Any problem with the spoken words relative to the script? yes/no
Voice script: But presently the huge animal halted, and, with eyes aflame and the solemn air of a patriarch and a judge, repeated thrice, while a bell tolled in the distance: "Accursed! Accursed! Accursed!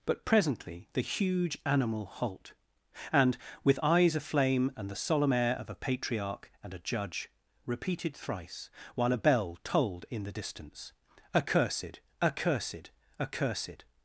yes